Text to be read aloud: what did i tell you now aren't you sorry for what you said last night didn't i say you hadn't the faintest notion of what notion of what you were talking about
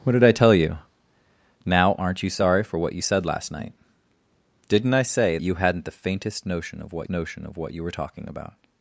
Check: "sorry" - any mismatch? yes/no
no